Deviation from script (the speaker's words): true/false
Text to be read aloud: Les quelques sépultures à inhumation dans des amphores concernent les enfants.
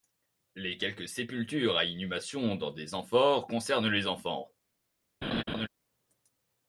false